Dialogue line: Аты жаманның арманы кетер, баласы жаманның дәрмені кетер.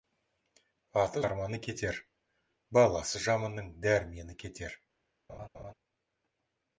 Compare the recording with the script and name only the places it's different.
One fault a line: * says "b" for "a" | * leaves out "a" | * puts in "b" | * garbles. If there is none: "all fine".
* leaves out "жаманның"